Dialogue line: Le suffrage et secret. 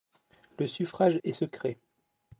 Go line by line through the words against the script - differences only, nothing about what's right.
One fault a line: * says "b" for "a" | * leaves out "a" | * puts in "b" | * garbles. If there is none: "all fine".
all fine